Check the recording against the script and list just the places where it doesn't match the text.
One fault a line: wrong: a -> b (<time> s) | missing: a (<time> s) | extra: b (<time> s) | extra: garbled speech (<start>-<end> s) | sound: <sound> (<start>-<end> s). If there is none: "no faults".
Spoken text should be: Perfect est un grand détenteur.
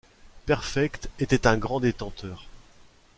wrong: est -> était (1.2 s)